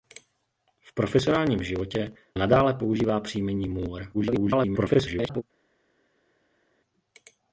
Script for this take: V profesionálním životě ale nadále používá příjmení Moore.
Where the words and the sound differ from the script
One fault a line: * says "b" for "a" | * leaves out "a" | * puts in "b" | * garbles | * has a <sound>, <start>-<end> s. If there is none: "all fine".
* leaves out "ale"
* garbles